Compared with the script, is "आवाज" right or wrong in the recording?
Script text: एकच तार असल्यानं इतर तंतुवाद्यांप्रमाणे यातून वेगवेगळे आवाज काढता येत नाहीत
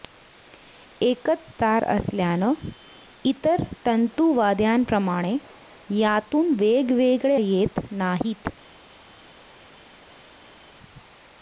wrong